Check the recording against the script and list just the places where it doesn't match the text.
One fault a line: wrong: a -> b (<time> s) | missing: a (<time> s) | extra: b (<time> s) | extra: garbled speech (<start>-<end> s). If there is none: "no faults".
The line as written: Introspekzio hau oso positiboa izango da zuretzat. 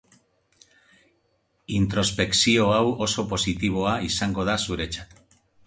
no faults